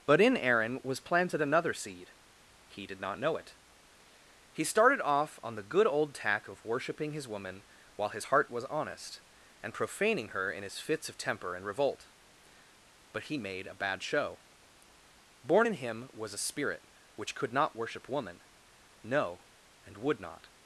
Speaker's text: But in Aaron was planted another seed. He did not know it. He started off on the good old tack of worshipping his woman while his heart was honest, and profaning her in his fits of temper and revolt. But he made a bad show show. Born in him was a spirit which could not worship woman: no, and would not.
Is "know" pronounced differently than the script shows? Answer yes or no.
no